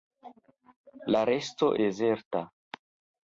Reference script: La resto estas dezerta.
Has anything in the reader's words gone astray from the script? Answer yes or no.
yes